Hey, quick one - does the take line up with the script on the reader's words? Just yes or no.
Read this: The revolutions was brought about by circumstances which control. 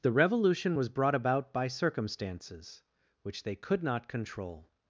no